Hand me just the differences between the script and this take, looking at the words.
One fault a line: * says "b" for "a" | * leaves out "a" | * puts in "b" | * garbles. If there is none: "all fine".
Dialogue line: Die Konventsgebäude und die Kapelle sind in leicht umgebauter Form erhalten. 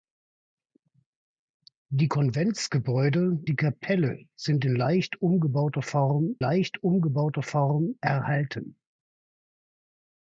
* leaves out "und"
* puts in "leicht umgebauter Form"